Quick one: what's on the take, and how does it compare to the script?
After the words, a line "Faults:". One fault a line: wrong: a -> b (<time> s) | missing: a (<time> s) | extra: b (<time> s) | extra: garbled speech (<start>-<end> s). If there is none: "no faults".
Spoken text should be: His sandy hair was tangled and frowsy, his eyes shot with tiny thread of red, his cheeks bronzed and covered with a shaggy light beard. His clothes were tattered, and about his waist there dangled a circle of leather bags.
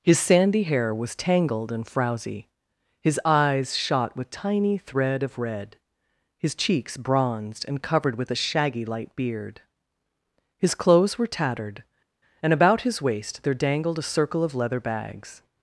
His sandy hair was tangled and frowsy, his eyes shot with tiny thread of red, his cheeks bronzed and covered with a shaggy light beard. His clothes were tattered, and about his waist there dangled a circle of leather bags.
Faults:
no faults